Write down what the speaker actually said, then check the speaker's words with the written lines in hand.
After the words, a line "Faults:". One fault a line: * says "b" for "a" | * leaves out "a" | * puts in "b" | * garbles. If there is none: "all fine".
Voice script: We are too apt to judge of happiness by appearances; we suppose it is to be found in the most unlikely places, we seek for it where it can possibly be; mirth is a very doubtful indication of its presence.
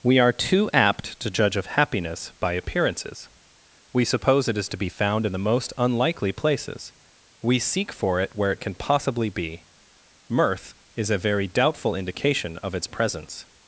We are too apt to judge of happiness by appearances; we suppose it is to be found in the most unlikely places, we seek for it where it can possibly be; mirth is a very doubtful indication of its presence.
Faults:
all fine